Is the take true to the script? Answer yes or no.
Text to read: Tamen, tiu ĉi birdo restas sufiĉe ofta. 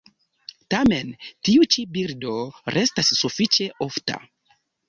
yes